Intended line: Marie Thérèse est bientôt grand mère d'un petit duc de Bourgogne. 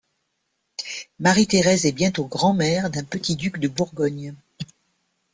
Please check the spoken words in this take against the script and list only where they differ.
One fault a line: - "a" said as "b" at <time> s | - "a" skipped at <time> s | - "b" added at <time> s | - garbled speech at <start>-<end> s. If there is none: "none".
none